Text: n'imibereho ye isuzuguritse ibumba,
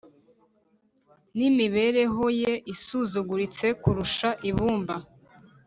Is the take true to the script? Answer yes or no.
no